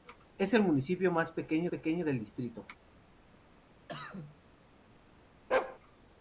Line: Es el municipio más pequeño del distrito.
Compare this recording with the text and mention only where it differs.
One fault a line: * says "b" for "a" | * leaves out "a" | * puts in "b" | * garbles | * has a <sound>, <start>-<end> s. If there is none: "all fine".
* puts in "pequeño"
* has a cough, 3.9-4.4 s
* has a bark, 5.5-5.8 s